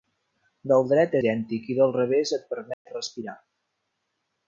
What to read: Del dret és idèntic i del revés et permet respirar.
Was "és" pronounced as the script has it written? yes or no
no